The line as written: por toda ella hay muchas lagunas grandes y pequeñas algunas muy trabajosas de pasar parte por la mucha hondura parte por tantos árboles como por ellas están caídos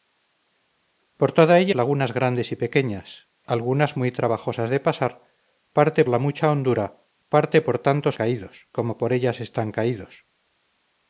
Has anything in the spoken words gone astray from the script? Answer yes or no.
yes